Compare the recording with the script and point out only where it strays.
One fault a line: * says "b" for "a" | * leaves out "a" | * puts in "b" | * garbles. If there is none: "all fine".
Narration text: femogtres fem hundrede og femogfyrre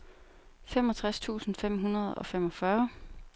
* puts in "tusind"